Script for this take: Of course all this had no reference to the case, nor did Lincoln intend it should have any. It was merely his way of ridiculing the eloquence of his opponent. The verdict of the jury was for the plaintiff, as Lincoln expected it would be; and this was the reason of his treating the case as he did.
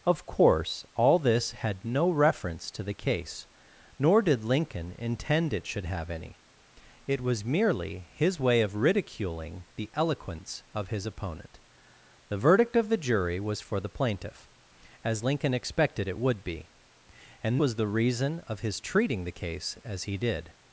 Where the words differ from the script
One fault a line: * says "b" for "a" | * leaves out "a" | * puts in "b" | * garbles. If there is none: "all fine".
* leaves out "this"